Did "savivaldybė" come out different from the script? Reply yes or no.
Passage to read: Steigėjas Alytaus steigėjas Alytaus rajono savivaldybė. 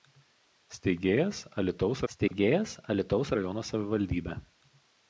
no